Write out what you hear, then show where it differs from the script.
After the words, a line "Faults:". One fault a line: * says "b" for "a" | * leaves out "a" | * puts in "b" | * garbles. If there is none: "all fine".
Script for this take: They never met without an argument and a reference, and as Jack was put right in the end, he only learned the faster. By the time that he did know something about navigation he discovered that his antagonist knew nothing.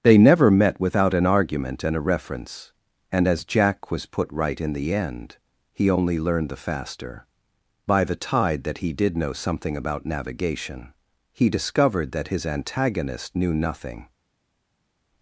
They never met without an argument and a reference, and as Jack was put right in the end, he only learned the faster. By the tide that he did know something about navigation he discovered that his antagonist knew nothing.
Faults:
* says "tide" for "time"